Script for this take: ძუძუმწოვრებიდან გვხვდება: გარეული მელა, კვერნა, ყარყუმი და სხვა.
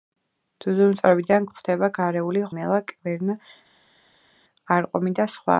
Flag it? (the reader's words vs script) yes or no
no